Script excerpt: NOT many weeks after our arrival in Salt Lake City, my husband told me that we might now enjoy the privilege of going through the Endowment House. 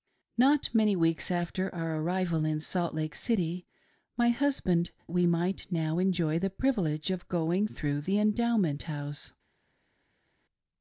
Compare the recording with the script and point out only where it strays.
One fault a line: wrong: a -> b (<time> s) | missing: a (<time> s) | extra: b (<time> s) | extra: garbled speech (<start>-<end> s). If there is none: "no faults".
missing: told me that (4.9 s)